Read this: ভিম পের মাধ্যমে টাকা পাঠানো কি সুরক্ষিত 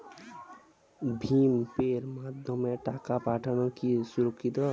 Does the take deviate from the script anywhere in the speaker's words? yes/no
no